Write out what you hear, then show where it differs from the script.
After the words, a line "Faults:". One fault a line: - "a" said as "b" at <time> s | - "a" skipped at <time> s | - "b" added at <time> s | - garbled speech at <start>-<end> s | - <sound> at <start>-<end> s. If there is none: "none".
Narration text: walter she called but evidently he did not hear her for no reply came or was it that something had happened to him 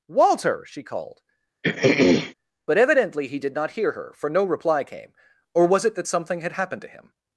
walter she called but evidently he did not hear her for no reply came or was it that something had happened to him
Faults:
- throat clearing at 1.6-2.3 s